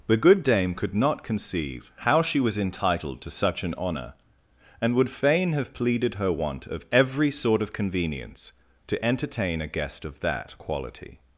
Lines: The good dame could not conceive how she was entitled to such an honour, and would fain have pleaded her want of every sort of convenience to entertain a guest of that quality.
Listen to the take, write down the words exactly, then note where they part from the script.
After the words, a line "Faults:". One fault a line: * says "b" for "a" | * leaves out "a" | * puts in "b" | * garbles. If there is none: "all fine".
The good dame could not conceive how she was entitled to such an honour, and would fain have pleaded her want of every sort of convenience to entertain a guest of that quality.
Faults:
all fine